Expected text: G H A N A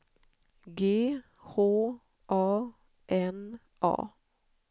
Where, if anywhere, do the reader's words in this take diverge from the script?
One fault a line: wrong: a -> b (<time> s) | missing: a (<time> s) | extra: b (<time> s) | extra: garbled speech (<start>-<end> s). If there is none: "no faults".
no faults